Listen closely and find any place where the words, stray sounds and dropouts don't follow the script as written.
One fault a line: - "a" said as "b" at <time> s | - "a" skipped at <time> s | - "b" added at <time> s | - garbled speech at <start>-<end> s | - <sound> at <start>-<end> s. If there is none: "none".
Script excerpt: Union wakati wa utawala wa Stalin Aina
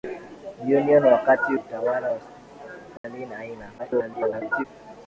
- "wa" skipped at 1.6 s
- dropout at 3.0-3.0 s
- garbled speech at 3.8-4.6 s